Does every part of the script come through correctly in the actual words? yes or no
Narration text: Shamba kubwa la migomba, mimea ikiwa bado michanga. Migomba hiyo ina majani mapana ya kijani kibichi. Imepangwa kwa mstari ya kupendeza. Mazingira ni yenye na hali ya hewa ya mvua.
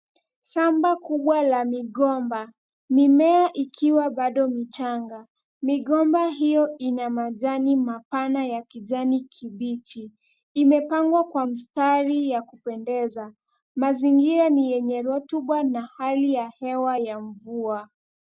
no